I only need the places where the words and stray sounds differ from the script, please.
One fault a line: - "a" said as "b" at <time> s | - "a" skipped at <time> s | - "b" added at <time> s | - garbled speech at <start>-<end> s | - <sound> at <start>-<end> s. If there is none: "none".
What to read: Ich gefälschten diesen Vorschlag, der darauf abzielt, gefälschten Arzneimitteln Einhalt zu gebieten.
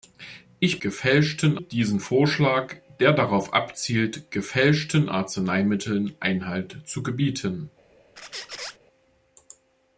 - squeak at 8.2-8.8 s